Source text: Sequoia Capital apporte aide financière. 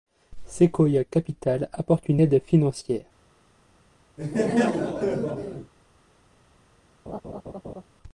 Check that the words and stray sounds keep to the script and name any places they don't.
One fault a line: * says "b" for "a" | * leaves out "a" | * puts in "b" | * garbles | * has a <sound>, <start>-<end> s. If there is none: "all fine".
* puts in "une"
* has a laugh, 4.2-5.7 s
* has a laugh, 7.1-7.8 s